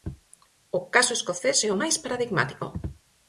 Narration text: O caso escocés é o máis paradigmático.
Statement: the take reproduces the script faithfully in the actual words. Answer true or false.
true